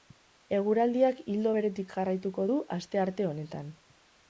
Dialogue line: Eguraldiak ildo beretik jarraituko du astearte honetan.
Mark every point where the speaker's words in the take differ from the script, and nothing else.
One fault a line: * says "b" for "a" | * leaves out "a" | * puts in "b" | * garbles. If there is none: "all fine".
all fine